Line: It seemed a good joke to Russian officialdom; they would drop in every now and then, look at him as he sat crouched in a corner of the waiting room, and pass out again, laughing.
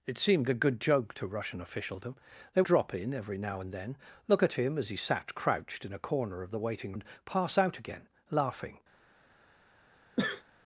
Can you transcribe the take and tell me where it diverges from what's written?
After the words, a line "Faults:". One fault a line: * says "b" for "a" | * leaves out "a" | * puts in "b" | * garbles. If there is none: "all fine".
It seemed a good joke to Russian officialdom; they drop in every now and then, look at him as he sat crouched in a corner of the waiting and pass out again, laughing.
Faults:
* leaves out "would"
* leaves out "room"